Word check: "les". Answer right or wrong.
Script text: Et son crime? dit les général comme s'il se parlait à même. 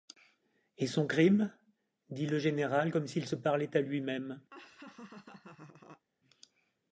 wrong